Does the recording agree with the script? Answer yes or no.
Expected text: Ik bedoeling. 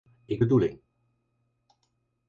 yes